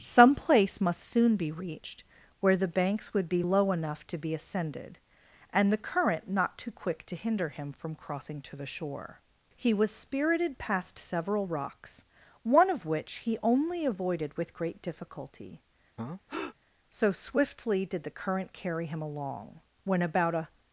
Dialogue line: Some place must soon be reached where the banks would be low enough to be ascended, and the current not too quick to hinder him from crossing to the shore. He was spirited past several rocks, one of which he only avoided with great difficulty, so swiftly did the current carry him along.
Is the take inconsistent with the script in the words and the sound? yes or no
yes